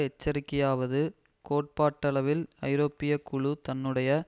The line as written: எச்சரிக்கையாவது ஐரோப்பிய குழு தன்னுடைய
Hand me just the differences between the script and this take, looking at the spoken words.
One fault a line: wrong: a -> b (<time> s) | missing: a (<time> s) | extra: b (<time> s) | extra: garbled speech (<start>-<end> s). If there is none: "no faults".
extra: கோட்பாட்டளவில் (1.4 s)